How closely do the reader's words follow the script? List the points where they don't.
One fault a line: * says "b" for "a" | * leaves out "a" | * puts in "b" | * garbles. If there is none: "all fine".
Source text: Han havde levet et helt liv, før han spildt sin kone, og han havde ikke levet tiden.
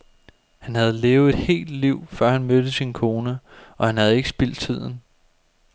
* says "mødte" for "spildt"
* says "spildt" for "levet"